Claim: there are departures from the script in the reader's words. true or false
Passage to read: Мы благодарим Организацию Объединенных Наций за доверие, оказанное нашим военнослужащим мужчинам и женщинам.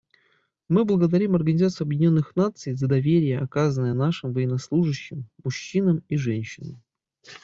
false